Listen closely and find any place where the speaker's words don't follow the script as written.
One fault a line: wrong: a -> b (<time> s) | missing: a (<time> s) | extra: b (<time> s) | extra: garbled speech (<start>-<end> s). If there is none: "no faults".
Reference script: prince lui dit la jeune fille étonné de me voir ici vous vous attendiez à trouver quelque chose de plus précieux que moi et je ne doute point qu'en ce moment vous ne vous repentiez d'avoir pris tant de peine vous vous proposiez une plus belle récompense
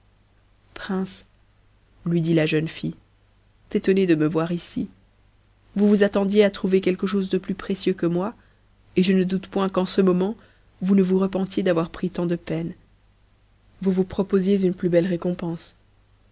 no faults